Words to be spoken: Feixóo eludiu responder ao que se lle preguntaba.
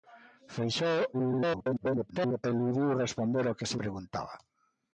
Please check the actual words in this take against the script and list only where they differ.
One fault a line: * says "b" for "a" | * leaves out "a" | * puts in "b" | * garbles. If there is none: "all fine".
* garbles
* leaves out "lle"